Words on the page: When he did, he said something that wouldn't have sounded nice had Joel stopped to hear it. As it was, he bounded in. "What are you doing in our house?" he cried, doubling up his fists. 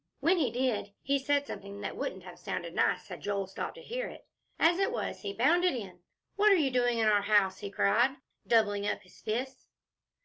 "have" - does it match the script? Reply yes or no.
yes